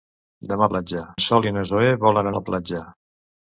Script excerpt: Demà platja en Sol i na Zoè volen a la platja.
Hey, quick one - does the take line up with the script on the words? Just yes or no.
yes